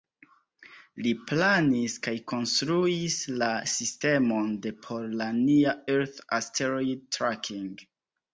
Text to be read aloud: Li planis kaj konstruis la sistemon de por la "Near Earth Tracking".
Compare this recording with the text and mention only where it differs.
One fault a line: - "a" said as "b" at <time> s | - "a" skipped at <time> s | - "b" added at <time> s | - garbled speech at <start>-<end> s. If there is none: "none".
- "Asteroid" added at 6.4 s